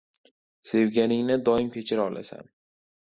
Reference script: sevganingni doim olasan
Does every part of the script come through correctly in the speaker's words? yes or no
no